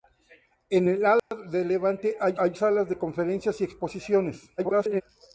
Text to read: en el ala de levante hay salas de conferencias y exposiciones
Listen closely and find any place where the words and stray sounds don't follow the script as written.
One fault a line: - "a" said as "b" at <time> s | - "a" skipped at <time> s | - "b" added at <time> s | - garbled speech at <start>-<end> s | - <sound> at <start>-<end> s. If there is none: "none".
- dropout at 1.2-1.3 s
- "hay" added at 2.4 s
- garbled speech at 4.6-5.0 s